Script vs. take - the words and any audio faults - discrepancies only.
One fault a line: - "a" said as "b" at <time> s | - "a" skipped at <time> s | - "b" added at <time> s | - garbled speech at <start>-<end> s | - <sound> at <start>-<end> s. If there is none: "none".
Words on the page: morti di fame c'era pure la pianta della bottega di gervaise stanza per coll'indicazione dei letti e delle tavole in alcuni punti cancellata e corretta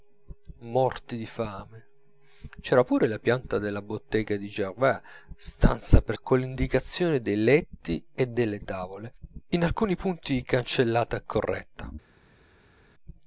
none